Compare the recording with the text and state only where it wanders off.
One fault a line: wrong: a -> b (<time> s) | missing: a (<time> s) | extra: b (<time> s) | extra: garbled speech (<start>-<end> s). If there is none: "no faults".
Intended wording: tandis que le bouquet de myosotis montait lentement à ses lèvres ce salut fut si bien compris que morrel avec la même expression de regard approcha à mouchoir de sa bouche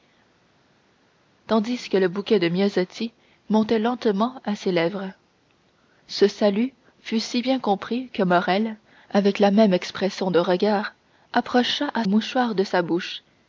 no faults